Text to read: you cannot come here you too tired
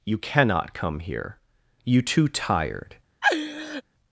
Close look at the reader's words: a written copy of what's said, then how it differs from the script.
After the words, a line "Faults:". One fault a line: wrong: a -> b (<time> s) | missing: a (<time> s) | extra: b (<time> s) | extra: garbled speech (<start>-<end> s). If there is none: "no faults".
you cannot come here you too tired
Faults:
no faults